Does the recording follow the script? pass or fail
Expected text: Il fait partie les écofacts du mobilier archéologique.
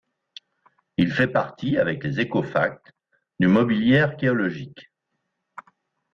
fail